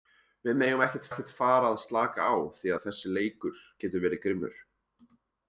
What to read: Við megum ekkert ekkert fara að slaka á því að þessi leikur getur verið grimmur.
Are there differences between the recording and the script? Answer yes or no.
no